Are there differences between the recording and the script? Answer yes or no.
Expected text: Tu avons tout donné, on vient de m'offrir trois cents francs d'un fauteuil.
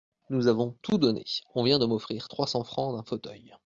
yes